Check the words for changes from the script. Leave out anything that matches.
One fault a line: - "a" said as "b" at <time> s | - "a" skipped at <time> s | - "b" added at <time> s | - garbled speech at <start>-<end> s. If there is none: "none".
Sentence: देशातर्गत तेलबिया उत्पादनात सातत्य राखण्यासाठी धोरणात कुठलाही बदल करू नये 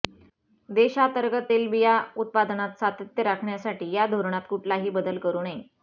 - "या" added at 3.9 s